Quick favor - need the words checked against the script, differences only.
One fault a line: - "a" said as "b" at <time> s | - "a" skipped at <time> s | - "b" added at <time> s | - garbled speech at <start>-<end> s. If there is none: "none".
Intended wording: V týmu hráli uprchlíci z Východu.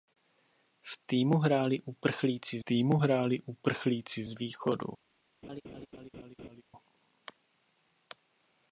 - "týmu hráli uprchlíci" added at 2.6 s